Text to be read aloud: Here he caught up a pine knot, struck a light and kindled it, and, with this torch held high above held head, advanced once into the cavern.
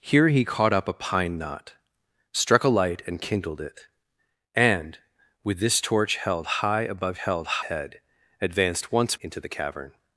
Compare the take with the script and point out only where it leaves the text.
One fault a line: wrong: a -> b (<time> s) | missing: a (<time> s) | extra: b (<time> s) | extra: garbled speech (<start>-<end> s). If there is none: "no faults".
no faults